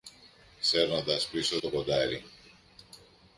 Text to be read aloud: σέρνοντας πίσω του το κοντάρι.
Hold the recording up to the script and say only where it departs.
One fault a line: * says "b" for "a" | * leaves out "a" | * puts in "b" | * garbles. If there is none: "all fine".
* leaves out "του"